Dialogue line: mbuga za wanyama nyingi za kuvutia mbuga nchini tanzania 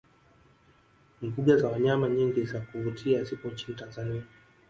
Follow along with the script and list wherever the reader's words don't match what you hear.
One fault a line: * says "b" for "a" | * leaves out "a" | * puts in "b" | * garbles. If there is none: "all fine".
* says "zipo" for "mbuga"